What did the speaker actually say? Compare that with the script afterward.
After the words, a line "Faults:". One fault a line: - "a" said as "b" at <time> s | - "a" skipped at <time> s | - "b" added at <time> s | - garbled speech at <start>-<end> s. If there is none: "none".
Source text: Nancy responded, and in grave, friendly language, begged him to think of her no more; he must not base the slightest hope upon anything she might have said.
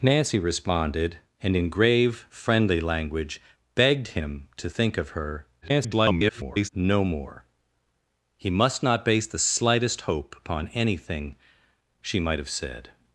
Nancy responded, and in grave, friendly language, begged him to think of her [garbled] no more; he must not base the slightest hope upon anything she might have said.
Faults:
- garbled speech at 5.6-6.7 s